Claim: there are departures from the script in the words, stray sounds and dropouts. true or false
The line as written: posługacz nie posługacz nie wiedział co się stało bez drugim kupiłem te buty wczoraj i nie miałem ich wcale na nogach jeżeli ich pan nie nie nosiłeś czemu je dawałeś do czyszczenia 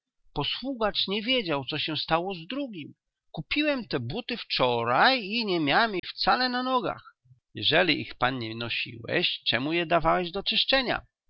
true